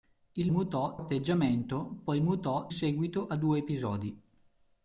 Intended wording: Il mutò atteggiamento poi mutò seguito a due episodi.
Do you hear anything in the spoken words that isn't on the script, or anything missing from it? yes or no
no